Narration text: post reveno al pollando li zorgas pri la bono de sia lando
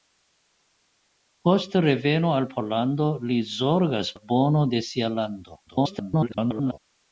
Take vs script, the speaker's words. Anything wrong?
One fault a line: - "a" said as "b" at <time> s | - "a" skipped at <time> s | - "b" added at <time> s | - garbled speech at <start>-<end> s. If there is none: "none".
- "pri" skipped at 4.1 s
- garbled speech at 5.7-6.8 s